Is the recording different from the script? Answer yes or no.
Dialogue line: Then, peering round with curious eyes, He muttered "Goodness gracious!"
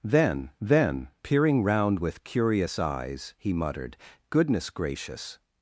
yes